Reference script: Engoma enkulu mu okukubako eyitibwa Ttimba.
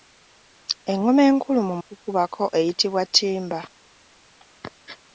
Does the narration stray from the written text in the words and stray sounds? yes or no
no